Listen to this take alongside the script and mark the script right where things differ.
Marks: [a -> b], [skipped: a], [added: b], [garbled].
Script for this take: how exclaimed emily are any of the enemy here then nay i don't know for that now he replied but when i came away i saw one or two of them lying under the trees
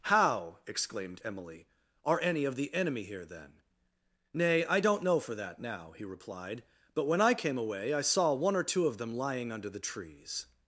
how exclaimed emily are any of the enemy here then nay i don't know for that now he replied but when i came away i saw one or two of them lying under the trees